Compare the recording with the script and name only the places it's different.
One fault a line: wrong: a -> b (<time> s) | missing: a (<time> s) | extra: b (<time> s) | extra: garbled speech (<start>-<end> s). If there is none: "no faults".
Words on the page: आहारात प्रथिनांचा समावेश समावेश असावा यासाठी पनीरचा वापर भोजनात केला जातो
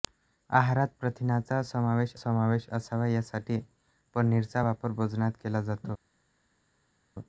no faults